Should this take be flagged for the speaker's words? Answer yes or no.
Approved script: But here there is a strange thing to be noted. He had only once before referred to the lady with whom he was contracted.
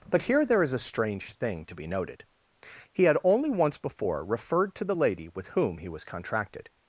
no